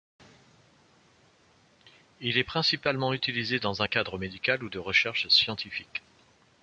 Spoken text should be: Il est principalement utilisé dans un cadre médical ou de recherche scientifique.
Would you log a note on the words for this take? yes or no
no